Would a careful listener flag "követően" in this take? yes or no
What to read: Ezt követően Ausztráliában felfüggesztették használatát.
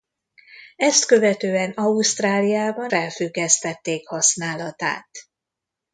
no